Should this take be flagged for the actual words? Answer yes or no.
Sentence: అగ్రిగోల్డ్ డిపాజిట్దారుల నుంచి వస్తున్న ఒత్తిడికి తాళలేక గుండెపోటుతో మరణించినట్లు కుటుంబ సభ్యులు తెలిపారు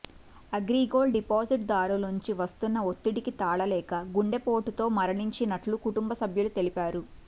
no